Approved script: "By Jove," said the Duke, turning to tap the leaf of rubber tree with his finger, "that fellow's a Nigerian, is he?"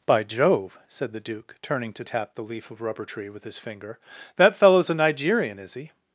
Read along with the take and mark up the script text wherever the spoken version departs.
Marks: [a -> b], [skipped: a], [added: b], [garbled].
"By Jove," said the Duke, turning to tap the leaf of rubber tree with his finger, "that fellow's a Nigerian, is he?"